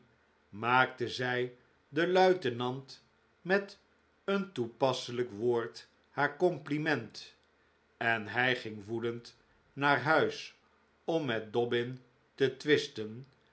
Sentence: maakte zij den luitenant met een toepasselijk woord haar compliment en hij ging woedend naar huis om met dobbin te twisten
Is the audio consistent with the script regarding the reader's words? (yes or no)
yes